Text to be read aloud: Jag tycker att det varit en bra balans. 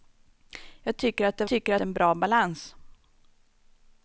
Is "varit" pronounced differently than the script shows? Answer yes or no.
yes